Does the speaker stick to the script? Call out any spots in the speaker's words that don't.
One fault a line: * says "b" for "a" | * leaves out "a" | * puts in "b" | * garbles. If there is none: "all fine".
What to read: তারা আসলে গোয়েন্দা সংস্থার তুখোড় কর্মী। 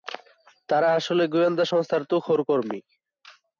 all fine